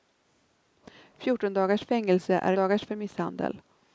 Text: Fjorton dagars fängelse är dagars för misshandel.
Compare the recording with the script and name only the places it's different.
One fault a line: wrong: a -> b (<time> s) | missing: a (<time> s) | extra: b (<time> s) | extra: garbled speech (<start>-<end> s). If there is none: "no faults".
no faults